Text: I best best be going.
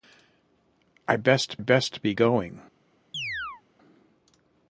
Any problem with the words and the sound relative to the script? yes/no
yes